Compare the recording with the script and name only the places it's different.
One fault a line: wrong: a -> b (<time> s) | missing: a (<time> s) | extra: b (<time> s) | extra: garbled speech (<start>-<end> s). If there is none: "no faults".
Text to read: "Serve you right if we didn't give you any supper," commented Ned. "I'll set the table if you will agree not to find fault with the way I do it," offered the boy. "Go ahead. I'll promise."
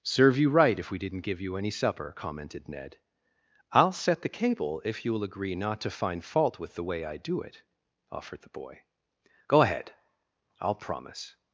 wrong: table -> cable (4.3 s)